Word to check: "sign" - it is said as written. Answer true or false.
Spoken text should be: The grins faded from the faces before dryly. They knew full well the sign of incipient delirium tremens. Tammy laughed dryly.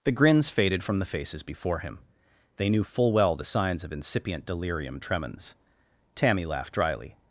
false